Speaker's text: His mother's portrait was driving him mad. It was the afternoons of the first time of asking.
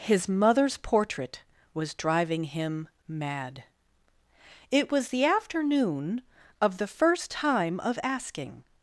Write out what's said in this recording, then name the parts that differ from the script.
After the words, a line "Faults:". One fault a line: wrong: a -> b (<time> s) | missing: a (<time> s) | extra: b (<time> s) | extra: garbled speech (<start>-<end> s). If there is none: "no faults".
His mother's portrait was driving him mad. It was the afternoon of the first time of asking.
Faults:
wrong: afternoons -> afternoon (5.2 s)